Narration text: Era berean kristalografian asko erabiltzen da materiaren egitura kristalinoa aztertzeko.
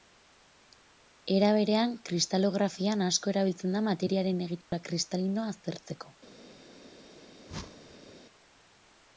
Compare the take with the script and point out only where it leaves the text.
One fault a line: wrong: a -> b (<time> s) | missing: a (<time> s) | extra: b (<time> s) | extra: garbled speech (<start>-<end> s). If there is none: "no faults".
no faults